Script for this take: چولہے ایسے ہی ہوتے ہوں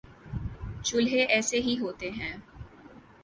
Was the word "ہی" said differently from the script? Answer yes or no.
no